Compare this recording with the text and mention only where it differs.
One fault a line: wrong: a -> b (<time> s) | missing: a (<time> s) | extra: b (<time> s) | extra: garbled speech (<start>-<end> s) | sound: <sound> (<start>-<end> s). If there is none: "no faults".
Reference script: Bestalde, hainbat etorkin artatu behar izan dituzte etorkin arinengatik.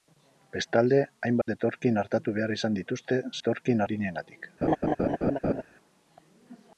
sound: dropout (1.4-1.5 s)
sound: laugh (4.6-5.6 s)